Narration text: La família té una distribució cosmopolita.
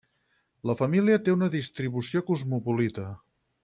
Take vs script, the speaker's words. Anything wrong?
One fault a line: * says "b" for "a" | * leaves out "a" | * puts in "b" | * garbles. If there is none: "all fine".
all fine